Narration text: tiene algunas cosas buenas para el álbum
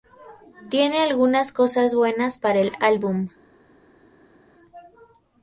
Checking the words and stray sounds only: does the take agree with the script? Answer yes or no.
yes